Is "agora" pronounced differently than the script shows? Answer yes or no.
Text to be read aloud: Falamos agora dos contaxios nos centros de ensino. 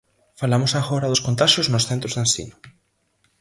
no